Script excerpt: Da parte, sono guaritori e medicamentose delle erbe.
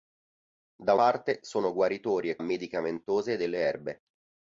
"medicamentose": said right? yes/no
yes